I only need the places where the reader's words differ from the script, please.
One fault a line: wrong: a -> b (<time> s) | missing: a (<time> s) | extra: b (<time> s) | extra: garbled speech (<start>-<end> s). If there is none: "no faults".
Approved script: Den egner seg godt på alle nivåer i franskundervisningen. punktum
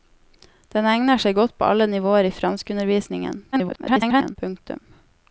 extra: garbled speech (3.5-4.4 s)